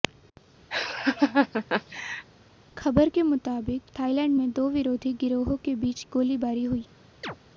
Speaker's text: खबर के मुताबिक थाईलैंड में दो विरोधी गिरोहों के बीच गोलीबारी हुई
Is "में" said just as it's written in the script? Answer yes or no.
yes